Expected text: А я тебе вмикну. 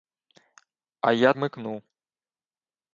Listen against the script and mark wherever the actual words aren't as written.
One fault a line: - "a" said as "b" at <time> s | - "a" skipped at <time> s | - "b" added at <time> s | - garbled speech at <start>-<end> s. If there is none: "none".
- "тебе" skipped at 1.3 s